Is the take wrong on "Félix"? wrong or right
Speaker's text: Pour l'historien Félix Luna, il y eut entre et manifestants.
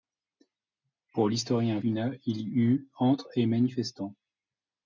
wrong